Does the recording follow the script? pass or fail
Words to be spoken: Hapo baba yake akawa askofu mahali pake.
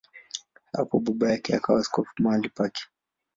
pass